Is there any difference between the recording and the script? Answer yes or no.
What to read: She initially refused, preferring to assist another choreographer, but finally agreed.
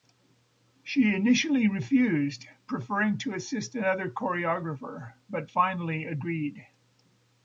no